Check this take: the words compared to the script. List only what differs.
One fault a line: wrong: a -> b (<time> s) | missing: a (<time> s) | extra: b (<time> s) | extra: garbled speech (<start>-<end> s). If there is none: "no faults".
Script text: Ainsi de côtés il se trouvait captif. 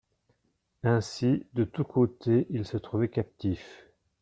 extra: tous (1.6 s)